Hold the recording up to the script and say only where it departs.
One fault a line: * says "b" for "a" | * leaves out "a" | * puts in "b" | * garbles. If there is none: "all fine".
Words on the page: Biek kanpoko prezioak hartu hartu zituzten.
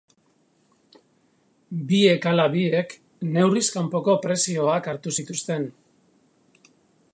* puts in "ala biek neurriz"
* leaves out "hartu"